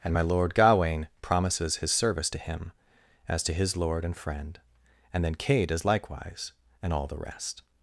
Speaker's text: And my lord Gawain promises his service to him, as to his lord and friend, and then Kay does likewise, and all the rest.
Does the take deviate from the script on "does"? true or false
false